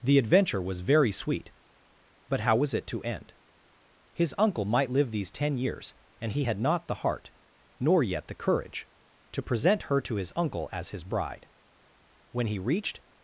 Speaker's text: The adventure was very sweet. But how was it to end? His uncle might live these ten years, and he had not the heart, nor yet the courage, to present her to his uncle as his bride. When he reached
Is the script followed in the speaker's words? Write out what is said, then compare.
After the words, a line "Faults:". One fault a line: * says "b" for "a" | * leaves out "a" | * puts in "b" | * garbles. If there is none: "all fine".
The adventure was very sweet. But how was it to end? His uncle might live these ten years, and he had not the heart, nor yet the courage, to present her to his uncle as his bride. When he reached
Faults:
all fine